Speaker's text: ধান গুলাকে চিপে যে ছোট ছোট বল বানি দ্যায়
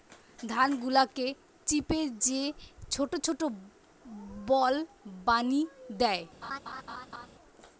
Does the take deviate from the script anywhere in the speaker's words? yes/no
no